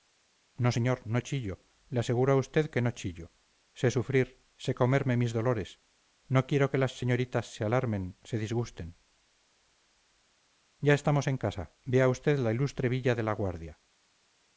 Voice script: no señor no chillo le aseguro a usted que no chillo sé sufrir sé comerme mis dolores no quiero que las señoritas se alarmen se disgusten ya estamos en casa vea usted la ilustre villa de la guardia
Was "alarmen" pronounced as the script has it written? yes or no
yes